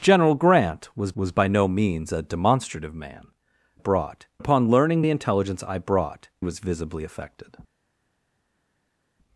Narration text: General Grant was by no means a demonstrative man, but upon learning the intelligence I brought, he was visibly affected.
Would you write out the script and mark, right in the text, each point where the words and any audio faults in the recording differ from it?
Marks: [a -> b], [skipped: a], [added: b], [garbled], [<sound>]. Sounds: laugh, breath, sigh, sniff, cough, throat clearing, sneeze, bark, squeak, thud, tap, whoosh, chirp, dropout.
General Grant was [added: was] by no means a demonstrative man, [but -> brought] upon learning the intelligence I brought, [skipped: he] was visibly affected.